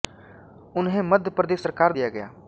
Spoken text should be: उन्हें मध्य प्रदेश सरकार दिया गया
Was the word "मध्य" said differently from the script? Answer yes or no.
no